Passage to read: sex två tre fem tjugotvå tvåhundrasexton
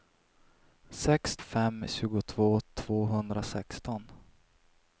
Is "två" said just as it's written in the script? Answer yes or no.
no